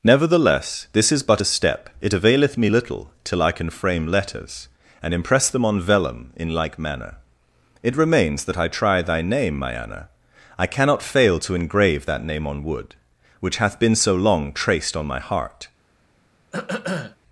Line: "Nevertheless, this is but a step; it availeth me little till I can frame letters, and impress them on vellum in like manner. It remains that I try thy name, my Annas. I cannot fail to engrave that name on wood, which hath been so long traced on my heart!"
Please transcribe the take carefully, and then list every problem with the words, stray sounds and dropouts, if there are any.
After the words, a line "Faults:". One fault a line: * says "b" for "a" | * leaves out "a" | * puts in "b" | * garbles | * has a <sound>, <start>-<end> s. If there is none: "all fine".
"Nevertheless, this is but a step; it availeth me little till I can frame letters, and impress them on vellum in like manner. It remains that I try thy name, my Anna. I cannot fail to engrave that name on wood, which hath been so long traced on my heart!"
Faults:
* says "Anna" for "Annas"
* has a throat clearing, 16.5-17.2 s